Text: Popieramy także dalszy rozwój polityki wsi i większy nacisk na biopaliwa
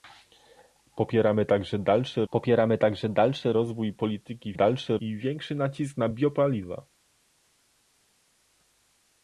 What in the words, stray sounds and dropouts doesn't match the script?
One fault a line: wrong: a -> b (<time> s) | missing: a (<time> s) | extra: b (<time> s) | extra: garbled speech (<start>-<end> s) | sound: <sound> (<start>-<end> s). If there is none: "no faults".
extra: popieramy także dalszy (2.3 s)
wrong: wsi -> dalszy (4.5 s)